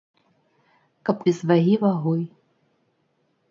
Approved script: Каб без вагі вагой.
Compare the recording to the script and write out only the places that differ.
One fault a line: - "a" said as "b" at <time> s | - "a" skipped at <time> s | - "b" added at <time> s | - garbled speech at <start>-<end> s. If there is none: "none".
none